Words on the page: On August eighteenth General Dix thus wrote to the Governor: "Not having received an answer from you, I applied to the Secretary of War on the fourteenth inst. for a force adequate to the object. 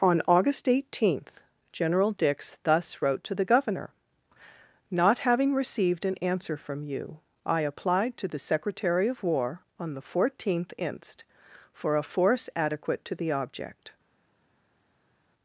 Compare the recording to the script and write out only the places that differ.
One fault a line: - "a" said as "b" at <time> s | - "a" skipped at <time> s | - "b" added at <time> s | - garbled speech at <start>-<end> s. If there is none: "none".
none